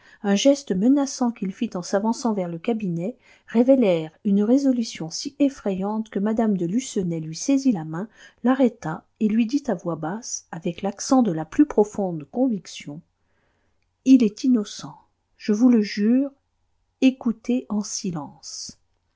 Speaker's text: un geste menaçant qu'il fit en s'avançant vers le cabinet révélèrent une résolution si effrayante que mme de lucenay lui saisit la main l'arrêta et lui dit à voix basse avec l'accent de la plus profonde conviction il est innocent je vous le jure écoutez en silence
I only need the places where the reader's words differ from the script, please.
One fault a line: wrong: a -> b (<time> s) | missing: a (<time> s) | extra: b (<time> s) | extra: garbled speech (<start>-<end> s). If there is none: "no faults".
no faults